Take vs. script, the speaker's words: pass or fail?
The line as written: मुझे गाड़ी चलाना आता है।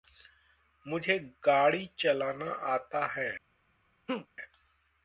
pass